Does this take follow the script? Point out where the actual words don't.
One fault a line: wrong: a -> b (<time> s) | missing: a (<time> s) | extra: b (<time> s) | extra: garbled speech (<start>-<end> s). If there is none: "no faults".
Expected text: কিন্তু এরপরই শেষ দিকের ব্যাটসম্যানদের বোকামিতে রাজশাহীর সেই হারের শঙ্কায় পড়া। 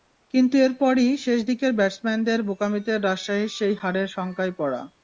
no faults